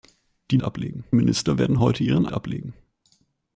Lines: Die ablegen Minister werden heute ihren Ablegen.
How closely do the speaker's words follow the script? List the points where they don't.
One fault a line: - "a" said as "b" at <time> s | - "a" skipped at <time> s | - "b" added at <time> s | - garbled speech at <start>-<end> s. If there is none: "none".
none